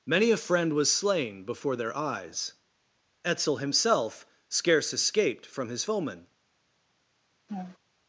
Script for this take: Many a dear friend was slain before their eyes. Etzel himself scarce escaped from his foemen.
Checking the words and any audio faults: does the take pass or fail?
fail